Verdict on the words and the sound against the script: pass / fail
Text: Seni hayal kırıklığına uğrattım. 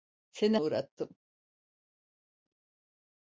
fail